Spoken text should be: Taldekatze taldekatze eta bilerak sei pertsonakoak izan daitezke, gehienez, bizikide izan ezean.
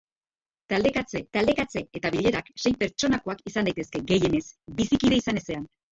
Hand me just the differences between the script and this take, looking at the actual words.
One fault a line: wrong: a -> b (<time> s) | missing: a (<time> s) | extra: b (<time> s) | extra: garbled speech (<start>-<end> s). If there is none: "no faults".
no faults